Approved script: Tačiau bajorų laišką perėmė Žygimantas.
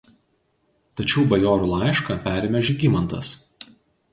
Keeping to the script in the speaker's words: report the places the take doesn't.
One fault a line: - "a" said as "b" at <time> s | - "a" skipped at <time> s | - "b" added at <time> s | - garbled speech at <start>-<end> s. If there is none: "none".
none